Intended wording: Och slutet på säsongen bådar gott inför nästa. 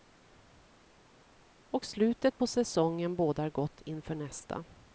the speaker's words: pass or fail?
pass